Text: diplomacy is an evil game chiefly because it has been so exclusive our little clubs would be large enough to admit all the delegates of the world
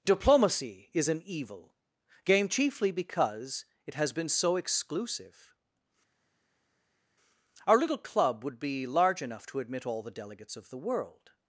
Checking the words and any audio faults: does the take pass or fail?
fail